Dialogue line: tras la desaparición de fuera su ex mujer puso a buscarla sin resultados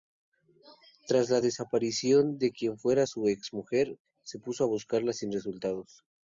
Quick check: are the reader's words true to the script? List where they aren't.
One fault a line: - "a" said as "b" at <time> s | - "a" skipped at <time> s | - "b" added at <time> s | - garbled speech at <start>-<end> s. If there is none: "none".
- "quien" added at 2.5 s
- "se" added at 4.2 s